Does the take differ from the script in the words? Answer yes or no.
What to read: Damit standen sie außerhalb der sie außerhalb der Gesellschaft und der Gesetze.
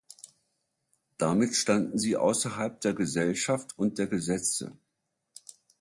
yes